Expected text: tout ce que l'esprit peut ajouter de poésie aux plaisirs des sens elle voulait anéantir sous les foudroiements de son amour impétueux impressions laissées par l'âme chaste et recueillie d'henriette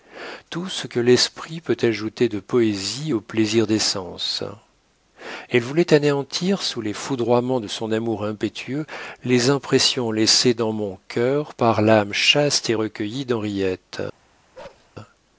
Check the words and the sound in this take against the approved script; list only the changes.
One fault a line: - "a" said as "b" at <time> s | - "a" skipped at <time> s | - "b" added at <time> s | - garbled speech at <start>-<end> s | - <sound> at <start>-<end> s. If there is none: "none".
- "les" added at 9.2 s
- "dans mon cœur" added at 10.5 s
- bark at 14.5-14.9 s